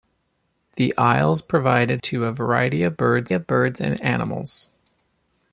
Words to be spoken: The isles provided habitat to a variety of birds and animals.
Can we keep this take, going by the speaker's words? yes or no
no